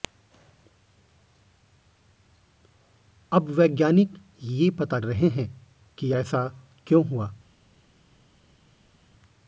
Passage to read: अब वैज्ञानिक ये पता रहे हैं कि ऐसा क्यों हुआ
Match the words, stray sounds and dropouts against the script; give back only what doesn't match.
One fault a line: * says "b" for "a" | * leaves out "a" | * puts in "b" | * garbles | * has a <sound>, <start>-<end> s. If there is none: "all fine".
all fine